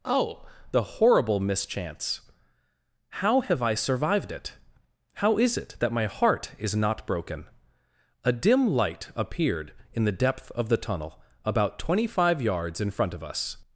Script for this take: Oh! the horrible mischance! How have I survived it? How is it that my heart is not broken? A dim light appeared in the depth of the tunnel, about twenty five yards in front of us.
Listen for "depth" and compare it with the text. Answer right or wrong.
right